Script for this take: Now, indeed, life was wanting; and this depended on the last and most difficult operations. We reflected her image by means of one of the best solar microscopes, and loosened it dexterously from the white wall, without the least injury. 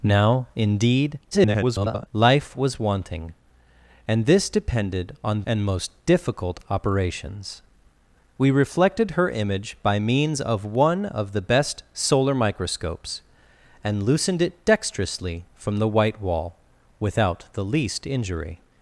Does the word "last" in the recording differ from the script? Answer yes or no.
yes